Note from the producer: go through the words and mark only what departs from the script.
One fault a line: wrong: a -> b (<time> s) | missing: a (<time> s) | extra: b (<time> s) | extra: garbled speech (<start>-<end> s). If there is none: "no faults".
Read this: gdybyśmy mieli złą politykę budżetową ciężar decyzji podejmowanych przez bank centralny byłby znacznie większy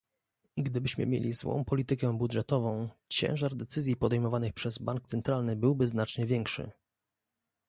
no faults